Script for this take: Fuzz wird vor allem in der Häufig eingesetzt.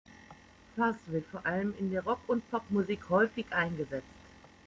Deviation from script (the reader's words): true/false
true